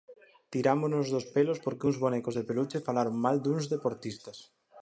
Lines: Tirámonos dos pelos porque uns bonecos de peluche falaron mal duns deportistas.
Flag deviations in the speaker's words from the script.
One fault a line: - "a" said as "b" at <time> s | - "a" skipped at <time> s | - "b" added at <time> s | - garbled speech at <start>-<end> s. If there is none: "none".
none